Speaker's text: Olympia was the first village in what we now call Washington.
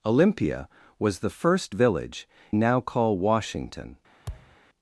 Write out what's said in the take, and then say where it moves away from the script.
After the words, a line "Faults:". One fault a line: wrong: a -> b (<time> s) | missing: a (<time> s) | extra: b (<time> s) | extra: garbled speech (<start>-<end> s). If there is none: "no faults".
Olympia was the first village now call Washington.
Faults:
missing: in what we (2.3 s)